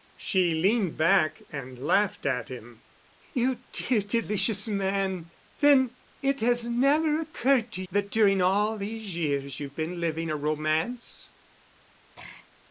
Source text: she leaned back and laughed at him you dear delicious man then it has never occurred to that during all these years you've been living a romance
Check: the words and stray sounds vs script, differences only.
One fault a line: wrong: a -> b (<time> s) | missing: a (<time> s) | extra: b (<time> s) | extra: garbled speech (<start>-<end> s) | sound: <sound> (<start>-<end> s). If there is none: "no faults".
sound: throat clearing (12.2-12.5 s)